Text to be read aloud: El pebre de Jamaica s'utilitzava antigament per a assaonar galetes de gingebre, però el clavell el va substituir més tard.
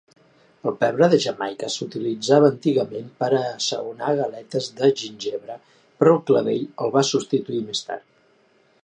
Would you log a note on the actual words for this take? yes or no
no